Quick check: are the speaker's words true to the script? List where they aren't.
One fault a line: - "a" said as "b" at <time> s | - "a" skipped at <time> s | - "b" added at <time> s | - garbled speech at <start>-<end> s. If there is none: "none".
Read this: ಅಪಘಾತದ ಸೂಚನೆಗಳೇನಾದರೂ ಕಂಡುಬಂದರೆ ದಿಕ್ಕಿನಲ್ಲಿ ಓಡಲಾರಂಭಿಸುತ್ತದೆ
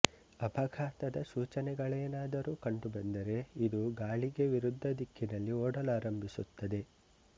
- "ಇದು ಗಾಳಿಗೆ ವಿರುದ್ಧ" added at 3.7 s